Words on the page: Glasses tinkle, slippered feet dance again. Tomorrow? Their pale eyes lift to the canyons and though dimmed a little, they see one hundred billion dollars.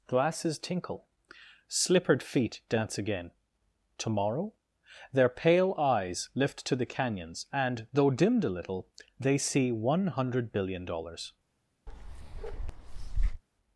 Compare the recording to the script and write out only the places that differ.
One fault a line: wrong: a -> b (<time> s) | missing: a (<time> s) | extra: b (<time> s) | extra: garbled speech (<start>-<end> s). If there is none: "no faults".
no faults